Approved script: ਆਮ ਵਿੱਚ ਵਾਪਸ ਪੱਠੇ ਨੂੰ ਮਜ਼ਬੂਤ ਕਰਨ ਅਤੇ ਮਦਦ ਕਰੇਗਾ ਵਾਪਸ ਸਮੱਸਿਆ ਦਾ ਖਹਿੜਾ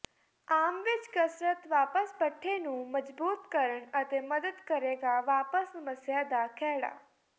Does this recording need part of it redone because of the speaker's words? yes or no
yes